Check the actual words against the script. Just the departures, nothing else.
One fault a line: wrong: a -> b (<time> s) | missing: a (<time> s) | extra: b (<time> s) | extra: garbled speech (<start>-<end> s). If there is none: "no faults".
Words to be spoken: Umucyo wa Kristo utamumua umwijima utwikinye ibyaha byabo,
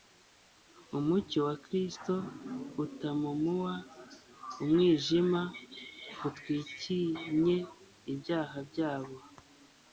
no faults